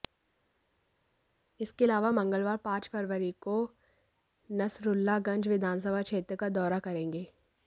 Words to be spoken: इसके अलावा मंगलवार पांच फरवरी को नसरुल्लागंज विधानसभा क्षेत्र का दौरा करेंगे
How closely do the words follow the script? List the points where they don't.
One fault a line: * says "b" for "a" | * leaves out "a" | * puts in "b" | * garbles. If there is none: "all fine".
all fine